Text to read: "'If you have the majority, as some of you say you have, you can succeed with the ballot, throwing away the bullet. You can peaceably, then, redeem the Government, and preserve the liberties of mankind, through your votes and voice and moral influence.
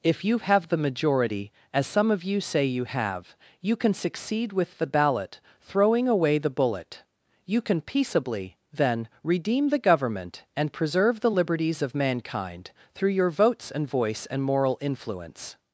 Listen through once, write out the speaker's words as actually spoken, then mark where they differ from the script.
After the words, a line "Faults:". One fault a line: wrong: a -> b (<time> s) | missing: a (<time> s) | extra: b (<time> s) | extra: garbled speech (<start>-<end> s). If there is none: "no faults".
"'If you have the majority, as some of you say you have, you can succeed with the ballot, throwing away the bullet. You can peaceably, then, redeem the Government, and preserve the liberties of mankind, through your votes and voice and moral influence.
Faults:
no faults